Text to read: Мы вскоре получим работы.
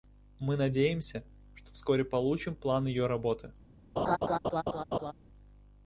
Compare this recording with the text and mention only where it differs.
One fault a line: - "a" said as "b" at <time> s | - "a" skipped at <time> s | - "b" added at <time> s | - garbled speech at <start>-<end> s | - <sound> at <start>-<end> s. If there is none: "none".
- "надеемся что" added at 0.6 s
- "план ее" added at 2.5 s
- laugh at 4.0-5.1 s